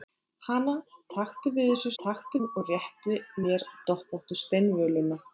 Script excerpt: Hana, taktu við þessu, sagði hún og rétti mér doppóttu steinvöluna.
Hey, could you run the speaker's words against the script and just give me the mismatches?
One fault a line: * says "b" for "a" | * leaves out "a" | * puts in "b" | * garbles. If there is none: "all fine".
* says "taktu" for "sagði"